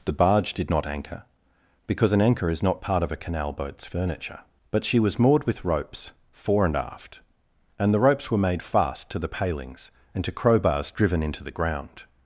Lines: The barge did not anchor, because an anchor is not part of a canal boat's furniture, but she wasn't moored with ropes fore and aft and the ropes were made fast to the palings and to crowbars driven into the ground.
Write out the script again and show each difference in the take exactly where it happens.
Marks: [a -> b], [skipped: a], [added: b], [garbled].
The barge did not anchor, because an anchor is not part of a canal boat's furniture, but she [wasn't -> was] moored with ropes fore and aft and the ropes were made fast to the palings and to crowbars driven into the ground.